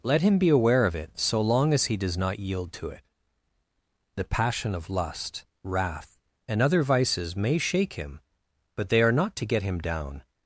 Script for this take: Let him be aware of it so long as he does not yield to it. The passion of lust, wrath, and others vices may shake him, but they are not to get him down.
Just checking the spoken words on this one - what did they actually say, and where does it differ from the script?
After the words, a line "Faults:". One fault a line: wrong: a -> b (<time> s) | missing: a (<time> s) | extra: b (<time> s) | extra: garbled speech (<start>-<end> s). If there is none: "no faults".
Let him be aware of it so long as he does not yield to it. The passion of lust, wrath, and other vices may shake him, but they are not to get him down.
Faults:
wrong: others -> other (6.6 s)